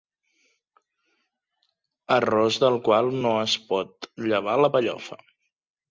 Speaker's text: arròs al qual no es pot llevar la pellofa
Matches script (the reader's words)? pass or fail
fail